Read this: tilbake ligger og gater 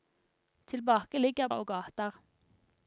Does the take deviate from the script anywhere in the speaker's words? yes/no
no